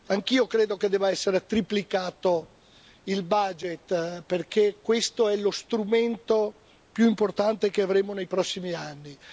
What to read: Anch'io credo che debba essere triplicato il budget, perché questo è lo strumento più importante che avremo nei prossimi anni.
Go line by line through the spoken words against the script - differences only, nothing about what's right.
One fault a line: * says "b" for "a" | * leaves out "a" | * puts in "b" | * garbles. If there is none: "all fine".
all fine